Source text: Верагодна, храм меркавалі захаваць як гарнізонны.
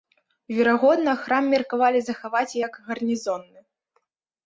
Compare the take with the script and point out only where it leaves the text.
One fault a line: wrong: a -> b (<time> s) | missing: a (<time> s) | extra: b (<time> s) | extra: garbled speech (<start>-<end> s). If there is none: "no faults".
no faults